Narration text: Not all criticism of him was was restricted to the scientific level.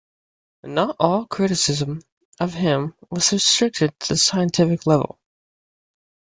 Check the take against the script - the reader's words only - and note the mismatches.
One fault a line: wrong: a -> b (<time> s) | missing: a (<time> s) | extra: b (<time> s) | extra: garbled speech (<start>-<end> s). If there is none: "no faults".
missing: was (3.3 s)